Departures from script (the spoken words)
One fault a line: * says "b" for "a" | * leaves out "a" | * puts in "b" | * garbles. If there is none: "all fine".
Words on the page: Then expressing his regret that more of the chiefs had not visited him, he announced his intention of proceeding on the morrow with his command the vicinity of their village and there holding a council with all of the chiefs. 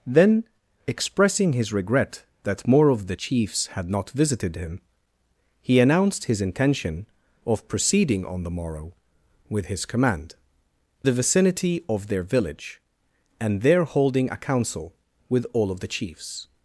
all fine